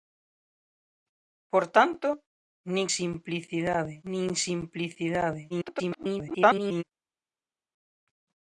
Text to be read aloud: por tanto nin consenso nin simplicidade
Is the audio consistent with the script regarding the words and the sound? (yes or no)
no